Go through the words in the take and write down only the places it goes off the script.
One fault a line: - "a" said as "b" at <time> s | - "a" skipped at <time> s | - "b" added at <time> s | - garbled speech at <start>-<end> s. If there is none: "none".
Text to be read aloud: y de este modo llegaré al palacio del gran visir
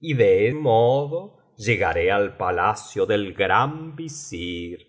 - "este" skipped at 0.5 s